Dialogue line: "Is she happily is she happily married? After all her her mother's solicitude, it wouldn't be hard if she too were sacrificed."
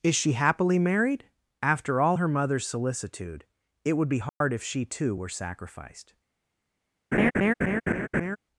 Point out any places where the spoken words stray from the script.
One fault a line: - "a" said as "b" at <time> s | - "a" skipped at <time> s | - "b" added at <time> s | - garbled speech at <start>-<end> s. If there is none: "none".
- "is she happily" skipped at 0.8 s
- "her" skipped at 2.3 s
- "wouldn't" said as "would" at 3.9 s